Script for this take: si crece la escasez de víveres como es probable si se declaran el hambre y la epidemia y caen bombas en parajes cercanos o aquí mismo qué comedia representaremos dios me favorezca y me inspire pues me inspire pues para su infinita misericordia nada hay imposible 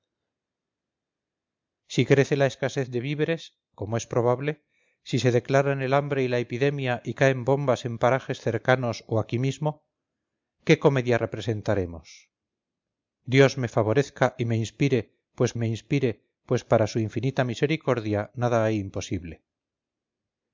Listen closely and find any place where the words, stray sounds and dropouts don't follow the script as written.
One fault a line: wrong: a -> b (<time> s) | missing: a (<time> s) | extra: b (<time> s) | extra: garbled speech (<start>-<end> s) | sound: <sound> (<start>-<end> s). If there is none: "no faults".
no faults